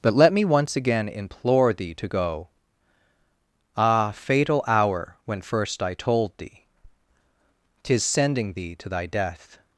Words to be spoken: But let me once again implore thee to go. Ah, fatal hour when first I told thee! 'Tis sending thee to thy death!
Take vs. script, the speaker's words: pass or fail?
pass